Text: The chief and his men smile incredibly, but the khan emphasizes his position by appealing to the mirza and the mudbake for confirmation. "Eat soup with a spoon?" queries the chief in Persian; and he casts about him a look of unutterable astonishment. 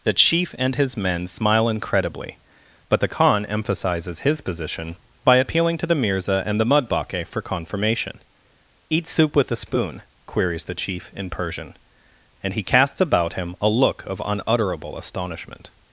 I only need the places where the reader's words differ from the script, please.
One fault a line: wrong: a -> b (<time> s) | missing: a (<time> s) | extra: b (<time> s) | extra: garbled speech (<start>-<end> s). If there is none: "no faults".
no faults